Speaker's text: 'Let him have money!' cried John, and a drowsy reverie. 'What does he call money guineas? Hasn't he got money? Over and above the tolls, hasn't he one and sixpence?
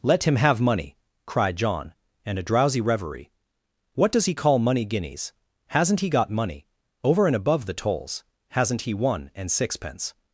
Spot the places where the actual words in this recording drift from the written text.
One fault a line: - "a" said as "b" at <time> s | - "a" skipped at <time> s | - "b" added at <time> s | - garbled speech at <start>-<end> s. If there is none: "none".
none